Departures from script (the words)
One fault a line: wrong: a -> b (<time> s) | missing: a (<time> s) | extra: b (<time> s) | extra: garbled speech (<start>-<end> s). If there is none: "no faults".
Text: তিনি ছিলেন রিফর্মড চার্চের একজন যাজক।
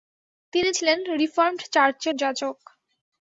missing: একজন (2.1 s)